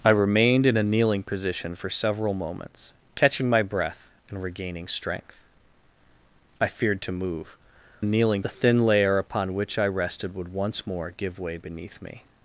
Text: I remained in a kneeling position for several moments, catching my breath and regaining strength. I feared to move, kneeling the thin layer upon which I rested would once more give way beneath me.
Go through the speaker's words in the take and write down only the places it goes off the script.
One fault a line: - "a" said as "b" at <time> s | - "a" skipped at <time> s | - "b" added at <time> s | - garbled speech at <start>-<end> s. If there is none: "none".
none